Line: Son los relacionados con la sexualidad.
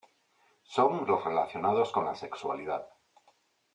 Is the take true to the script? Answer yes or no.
yes